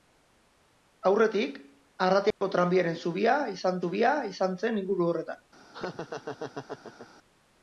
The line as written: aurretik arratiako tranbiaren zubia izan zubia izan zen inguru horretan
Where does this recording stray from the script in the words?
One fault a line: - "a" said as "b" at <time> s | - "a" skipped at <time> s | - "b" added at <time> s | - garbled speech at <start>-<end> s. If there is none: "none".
none